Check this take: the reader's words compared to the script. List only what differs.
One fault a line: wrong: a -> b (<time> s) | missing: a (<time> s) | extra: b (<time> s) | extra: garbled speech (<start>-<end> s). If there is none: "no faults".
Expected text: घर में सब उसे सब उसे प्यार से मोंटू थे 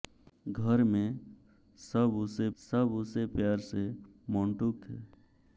no faults